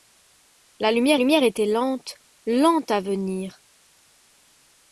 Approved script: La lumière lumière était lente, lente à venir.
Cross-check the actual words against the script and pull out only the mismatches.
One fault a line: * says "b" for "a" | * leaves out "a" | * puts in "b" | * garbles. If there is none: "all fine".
all fine